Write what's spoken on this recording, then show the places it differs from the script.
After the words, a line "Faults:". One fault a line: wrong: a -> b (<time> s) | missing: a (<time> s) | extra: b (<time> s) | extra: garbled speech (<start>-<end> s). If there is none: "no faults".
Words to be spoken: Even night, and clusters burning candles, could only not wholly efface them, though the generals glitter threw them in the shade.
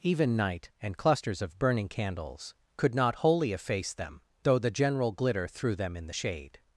Even night, and clusters of burning candles, could not wholly efface them, though the general glitter threw them in the shade.
Faults:
extra: of (1.4 s)
missing: only (3.0 s)
wrong: generals -> general (4.7 s)